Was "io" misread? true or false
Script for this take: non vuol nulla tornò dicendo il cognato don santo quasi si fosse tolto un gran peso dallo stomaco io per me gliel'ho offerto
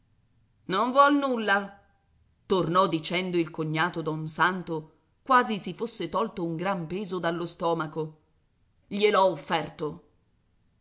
true